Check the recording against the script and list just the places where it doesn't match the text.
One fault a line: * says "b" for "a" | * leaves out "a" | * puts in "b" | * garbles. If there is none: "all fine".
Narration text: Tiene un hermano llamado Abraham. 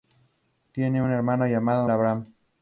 all fine